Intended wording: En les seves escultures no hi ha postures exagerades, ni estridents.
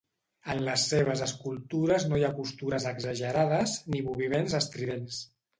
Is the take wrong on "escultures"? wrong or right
right